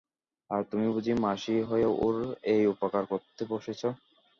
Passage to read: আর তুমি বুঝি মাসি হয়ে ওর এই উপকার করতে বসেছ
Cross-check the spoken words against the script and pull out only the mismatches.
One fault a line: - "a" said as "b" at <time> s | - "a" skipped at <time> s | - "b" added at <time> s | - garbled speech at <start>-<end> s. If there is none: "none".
none